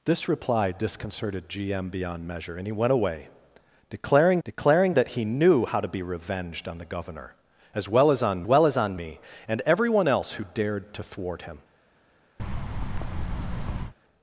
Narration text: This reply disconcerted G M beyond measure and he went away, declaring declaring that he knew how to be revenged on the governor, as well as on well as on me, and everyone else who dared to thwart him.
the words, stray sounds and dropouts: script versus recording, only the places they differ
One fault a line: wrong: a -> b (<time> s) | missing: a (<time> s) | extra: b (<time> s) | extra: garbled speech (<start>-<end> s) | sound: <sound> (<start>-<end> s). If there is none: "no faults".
sound: thud (12.4-13.9 s)